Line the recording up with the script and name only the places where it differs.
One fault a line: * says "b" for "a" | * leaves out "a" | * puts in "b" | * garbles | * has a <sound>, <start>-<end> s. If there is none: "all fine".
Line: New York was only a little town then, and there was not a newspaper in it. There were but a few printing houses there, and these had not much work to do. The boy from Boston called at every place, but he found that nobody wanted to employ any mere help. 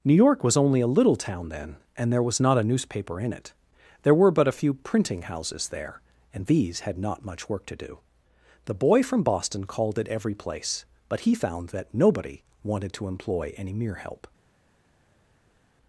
all fine